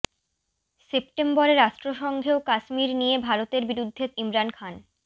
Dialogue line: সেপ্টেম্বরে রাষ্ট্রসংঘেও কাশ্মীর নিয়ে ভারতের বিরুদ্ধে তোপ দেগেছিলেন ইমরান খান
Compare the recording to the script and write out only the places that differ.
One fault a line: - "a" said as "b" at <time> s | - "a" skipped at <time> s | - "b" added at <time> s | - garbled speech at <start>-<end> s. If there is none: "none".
- "তোপ দেগেছিলেন" skipped at 4.0 s